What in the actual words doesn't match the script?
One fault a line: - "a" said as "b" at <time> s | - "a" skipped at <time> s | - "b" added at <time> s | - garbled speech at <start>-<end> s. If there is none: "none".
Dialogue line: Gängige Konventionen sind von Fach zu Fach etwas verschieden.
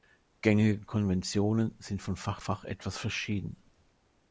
- "zu" skipped at 2.4 s